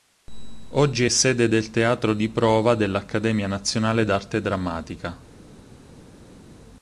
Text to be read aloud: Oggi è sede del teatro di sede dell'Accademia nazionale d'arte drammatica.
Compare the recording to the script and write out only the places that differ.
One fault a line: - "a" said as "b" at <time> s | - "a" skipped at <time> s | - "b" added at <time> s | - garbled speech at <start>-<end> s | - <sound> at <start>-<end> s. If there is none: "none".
- "sede" said as "prova" at 2.3 s